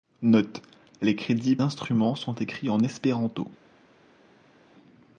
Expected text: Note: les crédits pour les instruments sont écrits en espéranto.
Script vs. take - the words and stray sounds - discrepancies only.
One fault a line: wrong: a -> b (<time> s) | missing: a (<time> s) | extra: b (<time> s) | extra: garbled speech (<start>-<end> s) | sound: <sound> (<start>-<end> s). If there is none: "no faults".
missing: pour les (1.6 s)